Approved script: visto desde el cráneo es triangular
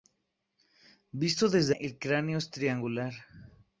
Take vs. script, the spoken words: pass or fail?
pass